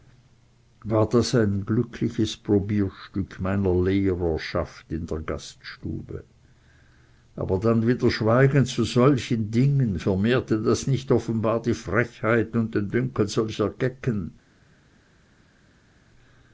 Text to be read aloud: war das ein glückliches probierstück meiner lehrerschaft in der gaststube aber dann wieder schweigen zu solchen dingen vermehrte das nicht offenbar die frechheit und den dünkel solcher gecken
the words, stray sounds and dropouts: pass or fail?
pass